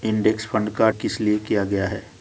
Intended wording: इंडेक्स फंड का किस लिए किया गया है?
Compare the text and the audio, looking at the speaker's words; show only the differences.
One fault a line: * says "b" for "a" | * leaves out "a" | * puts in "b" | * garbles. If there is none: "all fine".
all fine